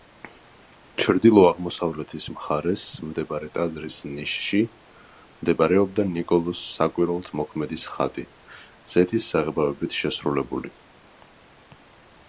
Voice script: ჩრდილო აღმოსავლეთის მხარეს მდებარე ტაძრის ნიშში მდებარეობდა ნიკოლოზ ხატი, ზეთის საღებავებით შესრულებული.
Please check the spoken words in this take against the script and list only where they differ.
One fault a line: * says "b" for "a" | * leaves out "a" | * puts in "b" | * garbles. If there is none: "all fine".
* puts in "საკვირველთმოქმედის"